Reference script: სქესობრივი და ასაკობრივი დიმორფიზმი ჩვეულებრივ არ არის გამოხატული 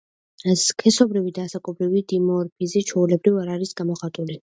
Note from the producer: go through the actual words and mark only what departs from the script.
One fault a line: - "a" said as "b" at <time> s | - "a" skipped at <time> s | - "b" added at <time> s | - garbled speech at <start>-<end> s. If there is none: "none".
none